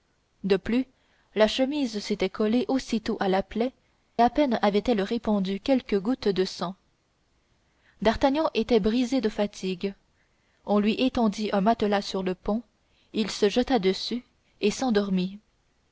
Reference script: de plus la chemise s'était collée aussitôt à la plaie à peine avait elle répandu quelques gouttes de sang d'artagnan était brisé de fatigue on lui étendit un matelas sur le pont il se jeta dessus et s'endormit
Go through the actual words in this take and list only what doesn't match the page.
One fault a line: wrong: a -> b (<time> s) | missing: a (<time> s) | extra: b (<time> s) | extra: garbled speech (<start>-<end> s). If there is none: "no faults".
no faults